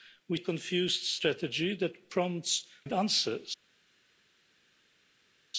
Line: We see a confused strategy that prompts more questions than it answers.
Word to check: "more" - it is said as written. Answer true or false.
false